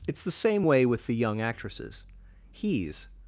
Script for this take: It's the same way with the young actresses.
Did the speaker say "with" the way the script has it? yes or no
yes